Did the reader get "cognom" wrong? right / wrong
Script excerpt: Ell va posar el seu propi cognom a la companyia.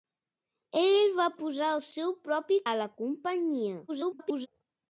wrong